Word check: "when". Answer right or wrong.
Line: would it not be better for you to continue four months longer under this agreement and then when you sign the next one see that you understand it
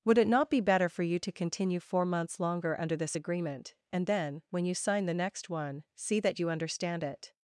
right